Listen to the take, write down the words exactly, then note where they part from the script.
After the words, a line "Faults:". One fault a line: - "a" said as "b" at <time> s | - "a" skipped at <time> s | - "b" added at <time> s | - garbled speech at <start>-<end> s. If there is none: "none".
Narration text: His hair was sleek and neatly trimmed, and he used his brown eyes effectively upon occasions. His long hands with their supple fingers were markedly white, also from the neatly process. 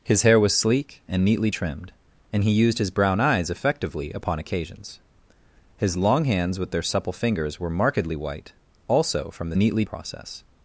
His hair was sleek and neatly trimmed, and he used his brown eyes effectively upon occasions. His long hands with their supple fingers were markedly white, also from the neatly process.
Faults:
none